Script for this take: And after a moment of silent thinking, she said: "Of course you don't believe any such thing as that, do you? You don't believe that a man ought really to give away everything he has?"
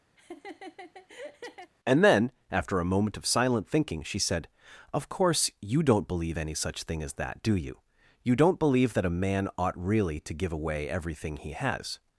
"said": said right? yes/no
yes